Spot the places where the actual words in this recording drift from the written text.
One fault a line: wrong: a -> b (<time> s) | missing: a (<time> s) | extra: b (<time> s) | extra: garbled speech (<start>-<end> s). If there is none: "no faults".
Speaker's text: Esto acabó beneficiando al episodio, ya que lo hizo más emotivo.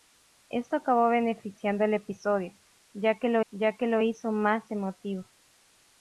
extra: ya que lo (3.5 s)